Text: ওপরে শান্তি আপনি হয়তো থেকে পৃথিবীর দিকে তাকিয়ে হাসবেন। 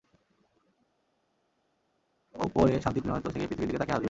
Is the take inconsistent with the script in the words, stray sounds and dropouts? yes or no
no